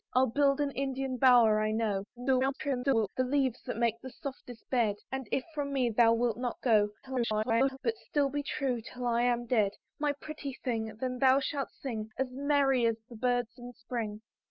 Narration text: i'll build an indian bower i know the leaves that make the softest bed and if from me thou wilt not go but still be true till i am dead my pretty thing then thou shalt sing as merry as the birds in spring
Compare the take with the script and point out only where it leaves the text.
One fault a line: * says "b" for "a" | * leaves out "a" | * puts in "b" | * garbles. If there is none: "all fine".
* garbles
* garbles